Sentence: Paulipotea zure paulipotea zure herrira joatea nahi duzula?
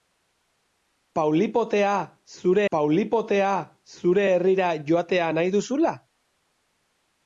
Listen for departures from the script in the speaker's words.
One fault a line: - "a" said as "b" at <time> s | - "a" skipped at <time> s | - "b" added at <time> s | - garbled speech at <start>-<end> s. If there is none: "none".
none